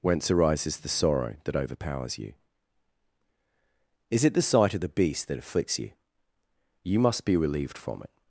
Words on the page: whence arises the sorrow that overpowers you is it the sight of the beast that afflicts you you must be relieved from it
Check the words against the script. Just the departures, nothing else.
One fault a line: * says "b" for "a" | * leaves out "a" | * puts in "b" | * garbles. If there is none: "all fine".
all fine